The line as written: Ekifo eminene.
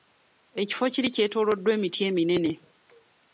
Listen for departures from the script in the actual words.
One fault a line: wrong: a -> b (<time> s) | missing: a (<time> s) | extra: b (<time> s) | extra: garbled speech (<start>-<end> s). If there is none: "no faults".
extra: kiri kyetooloddwa emiti (0.9 s)